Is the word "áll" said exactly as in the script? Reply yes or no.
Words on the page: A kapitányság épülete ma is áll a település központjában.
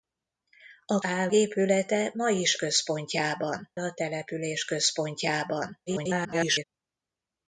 no